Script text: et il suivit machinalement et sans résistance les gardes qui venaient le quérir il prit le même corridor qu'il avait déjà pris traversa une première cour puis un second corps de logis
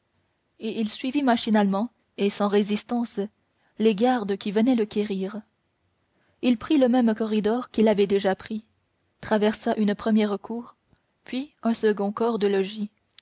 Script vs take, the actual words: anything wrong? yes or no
no